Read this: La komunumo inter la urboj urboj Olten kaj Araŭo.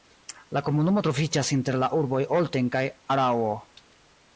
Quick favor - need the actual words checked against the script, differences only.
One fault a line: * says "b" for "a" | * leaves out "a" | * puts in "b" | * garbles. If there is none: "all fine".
* puts in "troviĝas"
* leaves out "urboj"